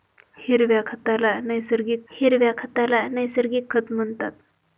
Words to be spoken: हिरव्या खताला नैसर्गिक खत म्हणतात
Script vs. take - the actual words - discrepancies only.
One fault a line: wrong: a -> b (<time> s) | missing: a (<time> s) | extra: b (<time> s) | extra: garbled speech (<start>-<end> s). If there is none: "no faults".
extra: हिरव्या खताला नैसर्गिक (2.1 s)